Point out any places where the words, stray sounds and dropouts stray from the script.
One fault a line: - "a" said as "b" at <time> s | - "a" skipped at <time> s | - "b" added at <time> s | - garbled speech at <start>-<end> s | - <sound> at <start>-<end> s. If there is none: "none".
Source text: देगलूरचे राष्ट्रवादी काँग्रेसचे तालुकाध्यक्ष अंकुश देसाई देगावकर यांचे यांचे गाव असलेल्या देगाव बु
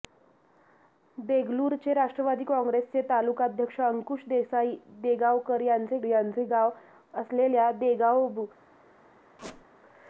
- squeak at 9.4-9.6 s